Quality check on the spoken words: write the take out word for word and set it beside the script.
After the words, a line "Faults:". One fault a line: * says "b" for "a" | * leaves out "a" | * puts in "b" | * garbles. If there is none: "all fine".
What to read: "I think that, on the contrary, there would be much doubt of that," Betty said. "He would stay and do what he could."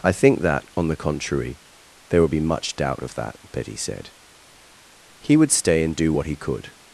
"I think that, on the contrary, there would be much doubt of that," Betty said. "He would stay and do what he could."
Faults:
all fine